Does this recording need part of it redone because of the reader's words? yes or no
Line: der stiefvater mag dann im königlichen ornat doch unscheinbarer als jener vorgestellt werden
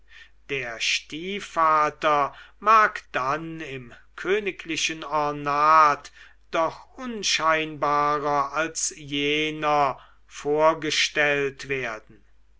no